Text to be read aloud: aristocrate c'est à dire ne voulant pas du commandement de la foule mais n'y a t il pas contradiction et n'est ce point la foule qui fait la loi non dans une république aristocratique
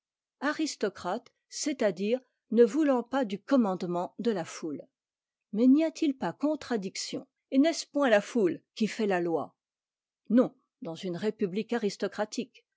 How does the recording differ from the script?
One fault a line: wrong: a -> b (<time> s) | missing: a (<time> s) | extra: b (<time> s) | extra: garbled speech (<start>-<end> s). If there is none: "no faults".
no faults